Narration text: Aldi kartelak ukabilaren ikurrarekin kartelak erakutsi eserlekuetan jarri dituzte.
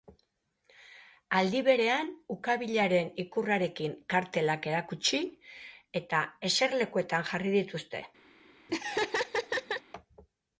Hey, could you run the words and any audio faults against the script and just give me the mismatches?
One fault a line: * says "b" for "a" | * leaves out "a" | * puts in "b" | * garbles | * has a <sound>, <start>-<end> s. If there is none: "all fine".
* says "berean" for "kartelak"
* puts in "eta"
* has a laugh, 8.7-9.8 s